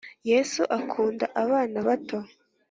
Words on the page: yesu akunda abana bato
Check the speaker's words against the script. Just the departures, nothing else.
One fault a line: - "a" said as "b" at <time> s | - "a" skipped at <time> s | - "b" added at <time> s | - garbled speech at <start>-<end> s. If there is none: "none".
none